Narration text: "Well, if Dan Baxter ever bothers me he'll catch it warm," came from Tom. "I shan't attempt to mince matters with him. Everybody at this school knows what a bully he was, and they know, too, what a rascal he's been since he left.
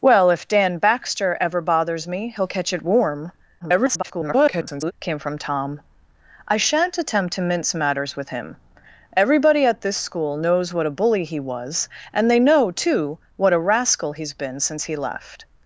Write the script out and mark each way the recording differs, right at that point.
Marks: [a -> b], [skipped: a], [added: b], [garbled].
"Well, if Dan Baxter ever bothers me he'll catch it warm," [garbled] came from Tom. "I shan't attempt to mince matters with him. Everybody at this school knows what a bully he was, and they know, too, what a rascal he's been since he left.